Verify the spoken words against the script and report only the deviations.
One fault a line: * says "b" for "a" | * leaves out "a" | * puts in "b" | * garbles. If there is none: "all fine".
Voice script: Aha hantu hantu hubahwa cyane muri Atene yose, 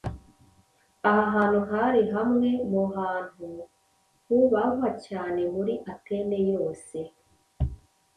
* puts in "hari hamwe mu"